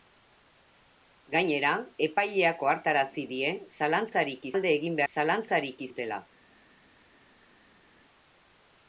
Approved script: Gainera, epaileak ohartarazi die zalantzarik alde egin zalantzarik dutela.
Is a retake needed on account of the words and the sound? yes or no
no